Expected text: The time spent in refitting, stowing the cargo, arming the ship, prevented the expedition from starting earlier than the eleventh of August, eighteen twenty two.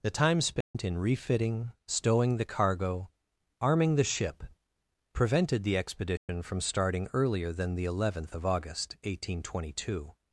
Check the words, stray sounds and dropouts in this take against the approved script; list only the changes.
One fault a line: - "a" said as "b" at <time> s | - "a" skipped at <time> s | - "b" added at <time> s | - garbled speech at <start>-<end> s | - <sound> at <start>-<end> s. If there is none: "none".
- dropout at 0.6-0.7 s
- dropout at 6.2-6.3 s